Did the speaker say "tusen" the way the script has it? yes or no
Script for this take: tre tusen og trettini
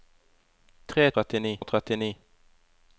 no